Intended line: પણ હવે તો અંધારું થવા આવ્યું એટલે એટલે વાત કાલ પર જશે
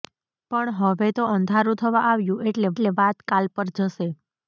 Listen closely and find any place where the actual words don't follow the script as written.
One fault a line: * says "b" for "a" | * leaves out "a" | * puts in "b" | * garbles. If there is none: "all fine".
all fine